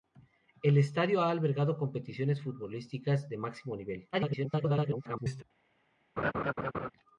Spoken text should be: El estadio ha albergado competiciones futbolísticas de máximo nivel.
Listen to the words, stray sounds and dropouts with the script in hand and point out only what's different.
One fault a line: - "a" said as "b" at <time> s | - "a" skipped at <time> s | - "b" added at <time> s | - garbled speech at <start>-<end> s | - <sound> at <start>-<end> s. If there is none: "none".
- garbled speech at 4.1-5.4 s
- laugh at 6.2-6.9 s